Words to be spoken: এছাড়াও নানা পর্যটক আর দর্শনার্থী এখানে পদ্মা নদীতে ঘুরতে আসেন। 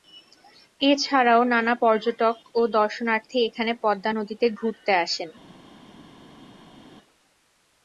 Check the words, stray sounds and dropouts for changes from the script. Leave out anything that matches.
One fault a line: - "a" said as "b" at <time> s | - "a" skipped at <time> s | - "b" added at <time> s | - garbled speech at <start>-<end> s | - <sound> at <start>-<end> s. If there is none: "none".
- "আর" said as "ও" at 2.5 s